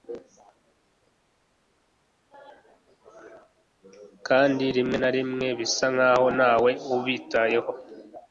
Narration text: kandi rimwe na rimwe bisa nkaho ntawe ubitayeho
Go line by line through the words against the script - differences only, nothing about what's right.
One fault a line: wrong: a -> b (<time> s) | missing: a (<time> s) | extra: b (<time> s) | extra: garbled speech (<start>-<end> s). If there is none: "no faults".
no faults